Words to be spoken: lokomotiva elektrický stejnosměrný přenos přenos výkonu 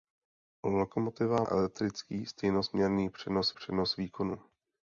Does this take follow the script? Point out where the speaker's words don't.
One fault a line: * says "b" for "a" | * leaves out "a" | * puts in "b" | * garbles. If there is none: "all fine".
all fine